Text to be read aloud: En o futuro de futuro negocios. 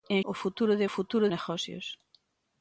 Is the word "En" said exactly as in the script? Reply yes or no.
yes